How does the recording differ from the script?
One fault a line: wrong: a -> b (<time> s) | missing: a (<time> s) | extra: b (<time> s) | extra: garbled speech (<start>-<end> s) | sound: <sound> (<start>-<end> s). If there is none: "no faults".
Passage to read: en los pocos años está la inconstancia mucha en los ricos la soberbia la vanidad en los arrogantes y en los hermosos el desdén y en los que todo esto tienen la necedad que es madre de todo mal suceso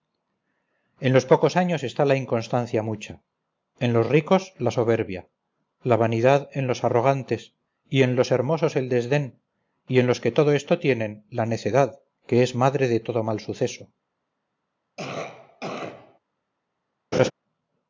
sound: cough (15.0-16.2 s)
sound: laugh (17.1-17.3 s)